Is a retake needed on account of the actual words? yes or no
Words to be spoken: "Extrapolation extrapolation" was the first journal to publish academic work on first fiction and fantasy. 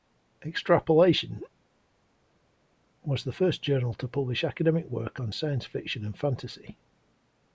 yes